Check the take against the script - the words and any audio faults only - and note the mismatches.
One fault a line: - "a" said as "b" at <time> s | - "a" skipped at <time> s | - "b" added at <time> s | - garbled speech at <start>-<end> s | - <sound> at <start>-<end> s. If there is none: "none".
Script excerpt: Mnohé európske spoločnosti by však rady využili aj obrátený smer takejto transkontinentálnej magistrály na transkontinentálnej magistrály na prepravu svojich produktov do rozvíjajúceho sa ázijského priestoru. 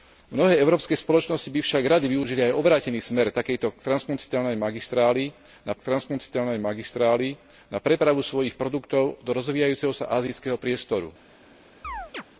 - chirp at 11.8-12.2 s